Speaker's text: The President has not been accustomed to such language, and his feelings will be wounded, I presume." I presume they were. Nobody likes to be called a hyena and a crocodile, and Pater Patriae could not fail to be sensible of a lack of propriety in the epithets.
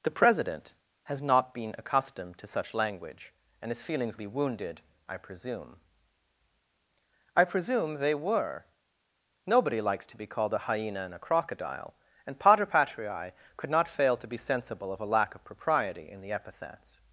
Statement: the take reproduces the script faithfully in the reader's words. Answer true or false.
false